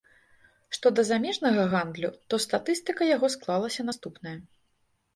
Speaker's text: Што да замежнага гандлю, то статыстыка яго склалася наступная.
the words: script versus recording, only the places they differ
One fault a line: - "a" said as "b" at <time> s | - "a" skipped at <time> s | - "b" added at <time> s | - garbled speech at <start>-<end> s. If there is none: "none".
none